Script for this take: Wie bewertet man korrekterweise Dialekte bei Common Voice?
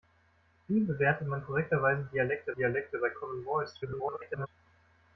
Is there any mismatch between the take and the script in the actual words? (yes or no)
yes